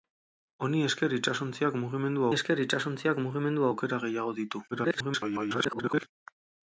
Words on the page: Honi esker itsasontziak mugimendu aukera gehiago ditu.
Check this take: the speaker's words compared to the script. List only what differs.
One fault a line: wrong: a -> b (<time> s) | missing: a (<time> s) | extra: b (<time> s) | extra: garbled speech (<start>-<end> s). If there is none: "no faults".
extra: esker itsasontziak mugimendu (2.3 s)
extra: garbled speech (4.7-6.1 s)